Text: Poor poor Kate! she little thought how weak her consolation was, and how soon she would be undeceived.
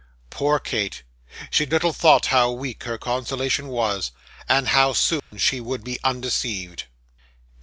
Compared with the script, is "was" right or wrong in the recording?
right